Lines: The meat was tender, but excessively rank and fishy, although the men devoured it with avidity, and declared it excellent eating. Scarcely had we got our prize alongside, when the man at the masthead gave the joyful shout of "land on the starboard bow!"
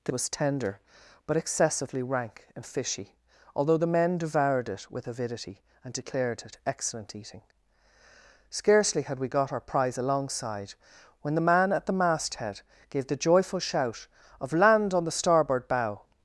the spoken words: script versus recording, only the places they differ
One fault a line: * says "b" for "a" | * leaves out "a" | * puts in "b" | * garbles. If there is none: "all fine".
* leaves out "meat"